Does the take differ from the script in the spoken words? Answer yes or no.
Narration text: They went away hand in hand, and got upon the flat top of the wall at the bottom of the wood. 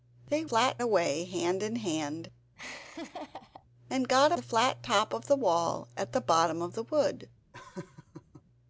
yes